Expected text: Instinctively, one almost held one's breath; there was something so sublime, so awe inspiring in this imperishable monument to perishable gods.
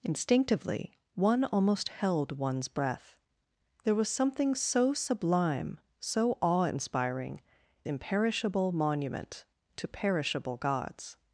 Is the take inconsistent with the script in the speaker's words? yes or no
yes